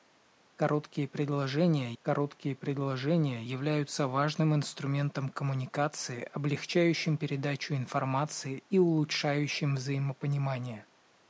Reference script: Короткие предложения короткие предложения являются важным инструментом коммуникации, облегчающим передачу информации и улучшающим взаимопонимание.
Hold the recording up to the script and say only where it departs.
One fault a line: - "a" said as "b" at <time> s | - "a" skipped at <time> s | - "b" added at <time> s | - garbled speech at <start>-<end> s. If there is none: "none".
none